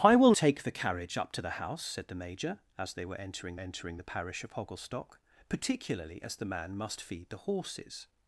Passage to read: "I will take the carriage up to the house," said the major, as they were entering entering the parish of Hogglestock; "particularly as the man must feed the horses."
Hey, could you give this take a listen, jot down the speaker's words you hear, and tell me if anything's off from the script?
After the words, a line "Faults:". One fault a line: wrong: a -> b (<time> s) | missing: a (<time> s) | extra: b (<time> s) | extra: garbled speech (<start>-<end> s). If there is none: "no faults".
"I will take the carriage up to the house," said the major, as they were entering entering the parish of Hogglestock; "particularly as the man must feed the horses."
Faults:
no faults